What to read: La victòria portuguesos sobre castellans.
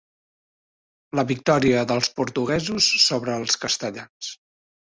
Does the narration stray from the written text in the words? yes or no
yes